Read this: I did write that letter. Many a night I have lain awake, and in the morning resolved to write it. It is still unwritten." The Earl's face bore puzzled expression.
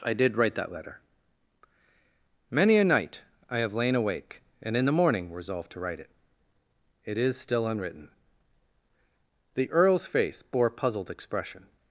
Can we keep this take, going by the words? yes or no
yes